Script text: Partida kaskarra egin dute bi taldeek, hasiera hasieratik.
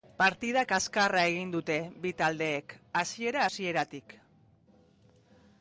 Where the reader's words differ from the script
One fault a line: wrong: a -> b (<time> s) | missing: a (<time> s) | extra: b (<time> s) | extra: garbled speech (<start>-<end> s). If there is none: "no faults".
no faults